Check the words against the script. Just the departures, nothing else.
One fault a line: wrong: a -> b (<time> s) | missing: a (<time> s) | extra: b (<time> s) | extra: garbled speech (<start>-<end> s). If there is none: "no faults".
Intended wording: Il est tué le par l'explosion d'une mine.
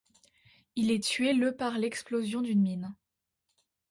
no faults